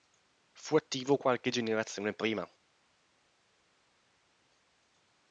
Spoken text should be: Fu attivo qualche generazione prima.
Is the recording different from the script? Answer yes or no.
no